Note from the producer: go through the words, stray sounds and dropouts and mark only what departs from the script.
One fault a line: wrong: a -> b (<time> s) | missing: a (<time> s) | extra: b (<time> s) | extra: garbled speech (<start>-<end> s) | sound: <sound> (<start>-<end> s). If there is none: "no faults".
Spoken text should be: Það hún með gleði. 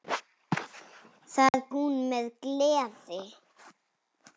sound: dropout (1.5-1.5 s)